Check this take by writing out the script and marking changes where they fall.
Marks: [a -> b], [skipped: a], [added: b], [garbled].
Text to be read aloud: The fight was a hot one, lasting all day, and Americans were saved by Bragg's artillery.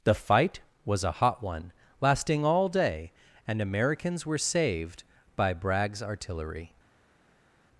The fight was a hot one, lasting all day, and Americans were saved by Bragg's artillery.